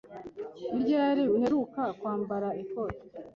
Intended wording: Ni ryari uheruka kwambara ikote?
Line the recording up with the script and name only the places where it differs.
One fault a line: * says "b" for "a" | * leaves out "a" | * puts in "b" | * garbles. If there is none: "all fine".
all fine